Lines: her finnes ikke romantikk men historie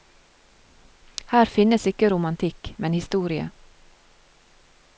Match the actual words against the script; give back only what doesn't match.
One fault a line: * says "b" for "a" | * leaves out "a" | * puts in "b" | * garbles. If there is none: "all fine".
all fine